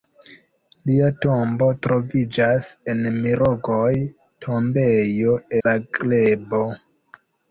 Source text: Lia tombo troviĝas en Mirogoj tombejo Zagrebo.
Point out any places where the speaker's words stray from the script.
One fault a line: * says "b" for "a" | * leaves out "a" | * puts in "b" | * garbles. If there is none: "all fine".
all fine